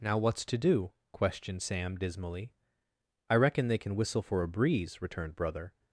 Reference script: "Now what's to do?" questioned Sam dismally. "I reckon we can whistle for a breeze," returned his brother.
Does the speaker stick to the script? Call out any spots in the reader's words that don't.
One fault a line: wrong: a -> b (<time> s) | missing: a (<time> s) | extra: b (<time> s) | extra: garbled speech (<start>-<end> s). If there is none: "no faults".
wrong: we -> they (3.7 s)
missing: his (5.3 s)